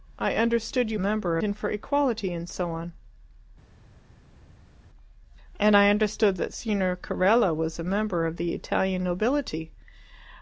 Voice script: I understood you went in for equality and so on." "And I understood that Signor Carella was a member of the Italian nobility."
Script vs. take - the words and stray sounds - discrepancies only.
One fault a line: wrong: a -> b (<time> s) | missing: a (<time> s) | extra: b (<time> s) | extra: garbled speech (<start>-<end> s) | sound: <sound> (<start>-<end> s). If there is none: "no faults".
wrong: went -> member (1.0 s)